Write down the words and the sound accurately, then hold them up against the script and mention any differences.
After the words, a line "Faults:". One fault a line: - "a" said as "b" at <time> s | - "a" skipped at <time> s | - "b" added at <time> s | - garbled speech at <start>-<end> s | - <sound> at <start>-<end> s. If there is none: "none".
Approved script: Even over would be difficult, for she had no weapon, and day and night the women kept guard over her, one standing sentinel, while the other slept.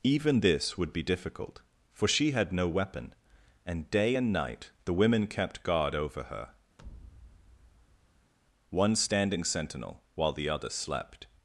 Even this would be difficult, for she had no weapon, and day and night the women kept guard over her, one standing sentinel, while the other slept.
Faults:
- "over" said as "this" at 0.4 s
- thud at 6.8-8.3 s